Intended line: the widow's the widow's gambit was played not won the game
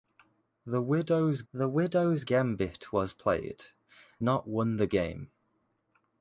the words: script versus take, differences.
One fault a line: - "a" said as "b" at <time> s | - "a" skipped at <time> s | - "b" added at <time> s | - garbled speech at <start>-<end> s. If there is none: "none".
none